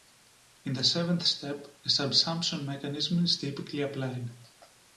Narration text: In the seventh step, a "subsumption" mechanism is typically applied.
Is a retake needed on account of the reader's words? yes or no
no